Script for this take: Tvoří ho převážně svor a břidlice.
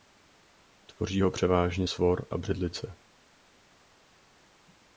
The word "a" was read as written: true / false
true